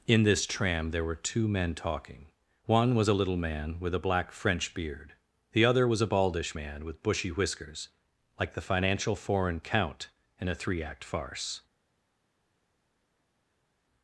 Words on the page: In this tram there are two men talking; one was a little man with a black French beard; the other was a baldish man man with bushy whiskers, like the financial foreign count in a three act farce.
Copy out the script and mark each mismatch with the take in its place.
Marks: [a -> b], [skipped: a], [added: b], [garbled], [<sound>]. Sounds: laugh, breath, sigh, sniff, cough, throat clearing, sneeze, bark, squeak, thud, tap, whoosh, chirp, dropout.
In this tram there [are -> were] two men talking; one was a little man with a black French beard; the other was a baldish man [skipped: man] with bushy whiskers, like the financial foreign count in a three act farce.